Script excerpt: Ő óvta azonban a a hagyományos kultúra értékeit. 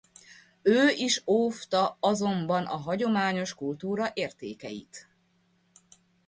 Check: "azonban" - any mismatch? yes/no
no